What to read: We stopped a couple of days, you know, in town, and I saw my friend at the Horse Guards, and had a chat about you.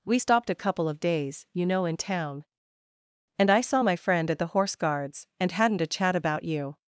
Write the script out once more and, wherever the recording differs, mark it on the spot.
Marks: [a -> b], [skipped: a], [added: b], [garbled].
We stopped a couple of days, you know, in town, and I saw my friend at the Horse Guards, and [had -> hadn't] a chat about you.